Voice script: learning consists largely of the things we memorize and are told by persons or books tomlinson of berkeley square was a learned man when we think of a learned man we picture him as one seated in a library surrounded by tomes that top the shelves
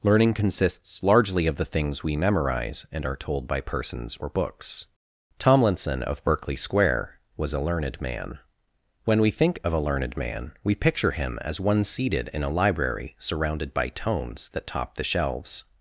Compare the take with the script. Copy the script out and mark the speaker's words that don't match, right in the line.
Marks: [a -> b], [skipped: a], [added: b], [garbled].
learning consists largely of the things we memorize and are told by persons or books tomlinson of berkeley square was a learned man when we think of a learned man we picture him as one seated in a library surrounded by tomes that top the shelves